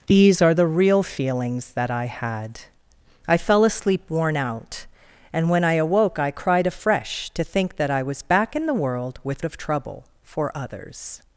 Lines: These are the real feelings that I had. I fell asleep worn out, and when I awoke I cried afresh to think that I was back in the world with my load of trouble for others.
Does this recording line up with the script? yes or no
no